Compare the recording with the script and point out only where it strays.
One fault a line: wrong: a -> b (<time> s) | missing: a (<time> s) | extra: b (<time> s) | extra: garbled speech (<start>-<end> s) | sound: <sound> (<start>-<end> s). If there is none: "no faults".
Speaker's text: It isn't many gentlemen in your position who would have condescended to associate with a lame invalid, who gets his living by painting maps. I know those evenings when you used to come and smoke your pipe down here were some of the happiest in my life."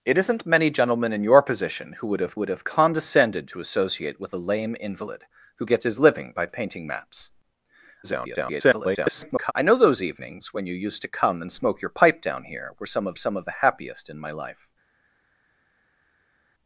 extra: would have (2.4 s)
extra: garbled speech (8.0-9.5 s)
extra: some of (13.2 s)